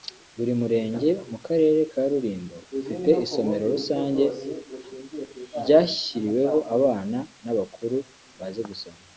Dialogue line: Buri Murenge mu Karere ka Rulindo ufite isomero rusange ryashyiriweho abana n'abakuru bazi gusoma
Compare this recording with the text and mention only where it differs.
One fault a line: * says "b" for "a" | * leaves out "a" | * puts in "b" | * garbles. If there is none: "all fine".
all fine